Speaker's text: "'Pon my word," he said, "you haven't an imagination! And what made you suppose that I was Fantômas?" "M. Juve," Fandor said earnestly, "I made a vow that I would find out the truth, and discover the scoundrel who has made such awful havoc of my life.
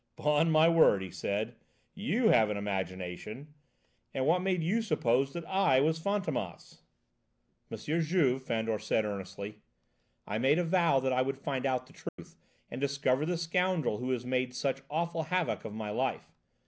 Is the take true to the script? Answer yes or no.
no